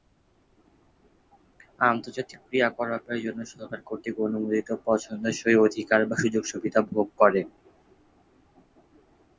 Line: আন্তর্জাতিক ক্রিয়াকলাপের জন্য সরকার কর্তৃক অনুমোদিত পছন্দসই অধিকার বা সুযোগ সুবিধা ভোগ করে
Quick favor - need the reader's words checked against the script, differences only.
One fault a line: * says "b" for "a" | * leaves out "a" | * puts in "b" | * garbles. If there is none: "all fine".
all fine